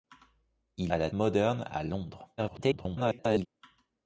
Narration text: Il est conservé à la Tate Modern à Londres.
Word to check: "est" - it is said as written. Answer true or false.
false